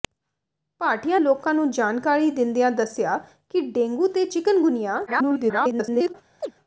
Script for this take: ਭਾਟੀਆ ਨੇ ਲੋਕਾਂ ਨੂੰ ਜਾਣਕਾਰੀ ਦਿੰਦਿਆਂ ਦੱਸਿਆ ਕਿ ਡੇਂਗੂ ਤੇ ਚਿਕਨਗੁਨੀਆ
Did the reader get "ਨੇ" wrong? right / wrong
wrong